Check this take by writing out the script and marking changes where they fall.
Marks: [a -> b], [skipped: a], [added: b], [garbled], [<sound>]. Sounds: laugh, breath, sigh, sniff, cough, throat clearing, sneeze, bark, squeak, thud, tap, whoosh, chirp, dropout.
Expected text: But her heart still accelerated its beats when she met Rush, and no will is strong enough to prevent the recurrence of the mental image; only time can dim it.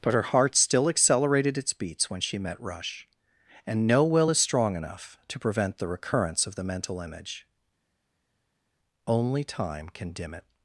But her heart still accelerated its beats when she met Rush, and no will is strong enough to prevent the recurrence of the mental image; only time can dim it.